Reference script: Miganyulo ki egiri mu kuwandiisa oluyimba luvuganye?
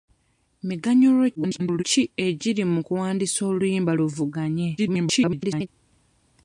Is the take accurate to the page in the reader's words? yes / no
no